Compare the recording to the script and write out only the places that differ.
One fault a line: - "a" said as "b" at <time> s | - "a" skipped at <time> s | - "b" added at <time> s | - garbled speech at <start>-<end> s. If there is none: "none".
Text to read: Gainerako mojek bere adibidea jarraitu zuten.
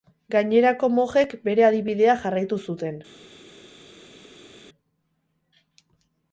none